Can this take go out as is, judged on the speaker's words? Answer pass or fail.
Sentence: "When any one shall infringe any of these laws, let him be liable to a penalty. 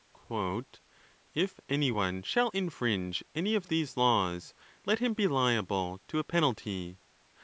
fail